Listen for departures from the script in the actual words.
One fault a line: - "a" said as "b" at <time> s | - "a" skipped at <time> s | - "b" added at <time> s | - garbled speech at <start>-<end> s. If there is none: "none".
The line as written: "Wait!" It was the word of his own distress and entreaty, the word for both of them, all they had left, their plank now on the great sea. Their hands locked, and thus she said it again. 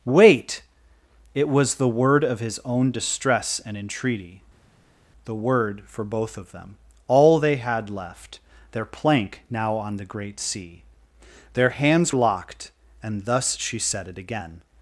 none